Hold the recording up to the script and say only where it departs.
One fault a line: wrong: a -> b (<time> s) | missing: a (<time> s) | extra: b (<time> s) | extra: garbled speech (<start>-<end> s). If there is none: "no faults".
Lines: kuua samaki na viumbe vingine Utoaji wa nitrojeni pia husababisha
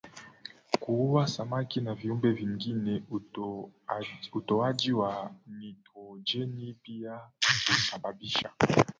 no faults